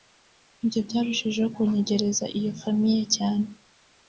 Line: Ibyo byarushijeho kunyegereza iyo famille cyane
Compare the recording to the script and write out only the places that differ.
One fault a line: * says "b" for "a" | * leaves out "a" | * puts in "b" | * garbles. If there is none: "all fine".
all fine